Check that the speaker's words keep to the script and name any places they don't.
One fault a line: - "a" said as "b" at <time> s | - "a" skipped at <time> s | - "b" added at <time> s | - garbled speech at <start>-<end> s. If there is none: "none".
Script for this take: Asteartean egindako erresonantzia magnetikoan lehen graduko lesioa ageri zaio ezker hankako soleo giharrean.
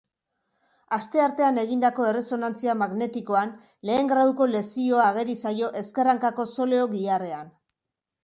none